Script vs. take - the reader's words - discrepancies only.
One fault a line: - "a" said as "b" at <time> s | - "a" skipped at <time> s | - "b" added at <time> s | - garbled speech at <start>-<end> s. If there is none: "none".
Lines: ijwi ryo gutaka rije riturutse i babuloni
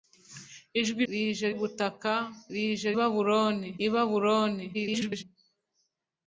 - "ryo" said as "rije" at 1.1 s
- "riturutse" said as "babuloni" at 3.0 s
- garbled speech at 4.7-5.2 s